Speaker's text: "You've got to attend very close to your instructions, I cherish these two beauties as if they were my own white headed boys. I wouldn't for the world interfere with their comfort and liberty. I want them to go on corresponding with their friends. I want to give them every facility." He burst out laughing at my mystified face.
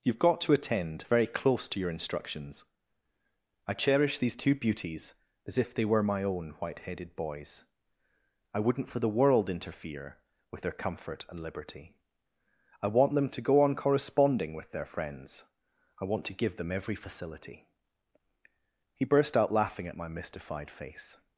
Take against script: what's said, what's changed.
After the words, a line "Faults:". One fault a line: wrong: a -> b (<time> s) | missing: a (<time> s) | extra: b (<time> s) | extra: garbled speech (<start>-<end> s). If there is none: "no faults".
"You've got to attend very close to your instructions, I cherish these two beauties as if they were my own white headed boys. I wouldn't for the world interfere with their comfort and liberty. I want them to go on corresponding with their friends. I want to give them every facility." He burst out laughing at my mystified face.
Faults:
no faults